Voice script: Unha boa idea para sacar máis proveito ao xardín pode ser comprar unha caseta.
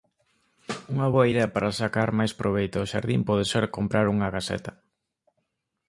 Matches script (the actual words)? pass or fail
pass